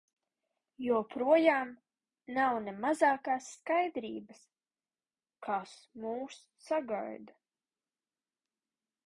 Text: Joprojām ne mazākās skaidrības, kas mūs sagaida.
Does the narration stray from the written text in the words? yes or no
yes